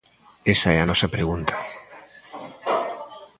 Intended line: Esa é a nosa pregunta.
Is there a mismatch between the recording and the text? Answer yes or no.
no